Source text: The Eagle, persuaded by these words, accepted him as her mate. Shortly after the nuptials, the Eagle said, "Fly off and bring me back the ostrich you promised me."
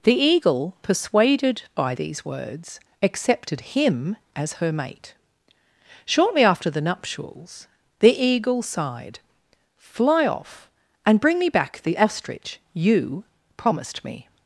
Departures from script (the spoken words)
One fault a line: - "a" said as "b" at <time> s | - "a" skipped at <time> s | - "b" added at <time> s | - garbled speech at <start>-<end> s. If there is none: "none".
- "said" said as "sighed" at 8.6 s